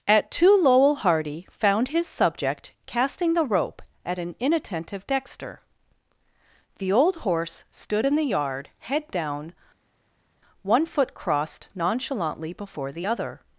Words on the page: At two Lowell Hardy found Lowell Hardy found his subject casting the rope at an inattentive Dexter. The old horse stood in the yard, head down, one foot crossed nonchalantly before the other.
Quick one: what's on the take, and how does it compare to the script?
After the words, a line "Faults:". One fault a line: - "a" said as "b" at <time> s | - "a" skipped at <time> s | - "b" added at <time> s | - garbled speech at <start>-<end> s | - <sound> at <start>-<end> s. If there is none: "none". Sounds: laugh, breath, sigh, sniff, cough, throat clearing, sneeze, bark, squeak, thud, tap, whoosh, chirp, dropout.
At two Lowell Hardy found his subject casting the rope at an inattentive Dexter. The old horse stood in the yard, head down, one foot crossed nonchalantly before the other.
Faults:
- "Lowell Hardy found" skipped at 1.9 s